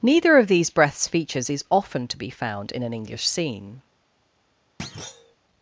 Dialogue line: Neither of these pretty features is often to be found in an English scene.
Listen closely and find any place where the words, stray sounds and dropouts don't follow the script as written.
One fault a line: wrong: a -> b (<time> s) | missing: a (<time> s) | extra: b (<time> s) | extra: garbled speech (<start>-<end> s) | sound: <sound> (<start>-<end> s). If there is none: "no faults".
wrong: pretty -> breaths (0.7 s)
sound: thud (4.8-5.4 s)